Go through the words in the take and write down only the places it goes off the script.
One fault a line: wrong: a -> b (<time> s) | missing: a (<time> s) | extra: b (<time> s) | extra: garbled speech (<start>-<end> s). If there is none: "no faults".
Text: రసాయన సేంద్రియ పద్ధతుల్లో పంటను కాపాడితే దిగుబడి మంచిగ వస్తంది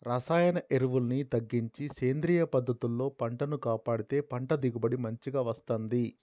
extra: ఎరువుల్ని తగ్గించి (0.7 s)
extra: పంట (4.3 s)